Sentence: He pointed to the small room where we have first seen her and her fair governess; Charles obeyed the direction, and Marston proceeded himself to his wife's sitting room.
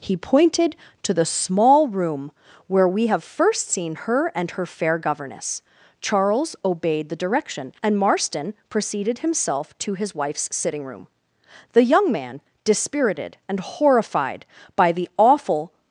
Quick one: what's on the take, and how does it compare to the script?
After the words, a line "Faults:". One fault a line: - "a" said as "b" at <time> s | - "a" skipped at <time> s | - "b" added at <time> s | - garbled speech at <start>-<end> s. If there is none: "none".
He pointed to the small room where we have first seen her and her fair governess; Charles obeyed the direction, and Marston proceeded himself to his wife's sitting room. The young man, dispirited and horrified by the awful
Faults:
- "The young man dispirited and horrified by the awful" added at 11.7 s